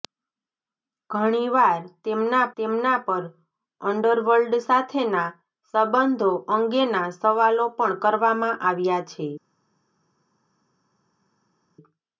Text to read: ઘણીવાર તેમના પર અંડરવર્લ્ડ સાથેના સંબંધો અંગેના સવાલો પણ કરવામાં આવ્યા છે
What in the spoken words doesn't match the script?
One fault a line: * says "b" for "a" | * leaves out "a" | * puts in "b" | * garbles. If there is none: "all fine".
* puts in "તેમના"